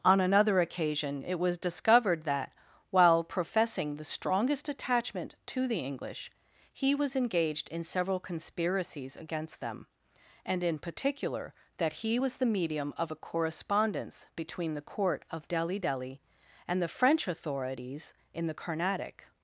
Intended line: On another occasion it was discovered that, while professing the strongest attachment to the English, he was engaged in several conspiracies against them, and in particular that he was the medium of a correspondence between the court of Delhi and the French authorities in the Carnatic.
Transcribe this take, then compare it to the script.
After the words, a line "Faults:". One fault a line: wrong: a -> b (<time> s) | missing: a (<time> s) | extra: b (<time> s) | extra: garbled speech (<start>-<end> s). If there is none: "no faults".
On another occasion it was discovered that, while professing the strongest attachment to the English, he was engaged in several conspiracies against them, and in particular that he was the medium of a correspondence between the court of Delhi Delhi and the French authorities in the Carnatic.
Faults:
extra: Delhi (15.8 s)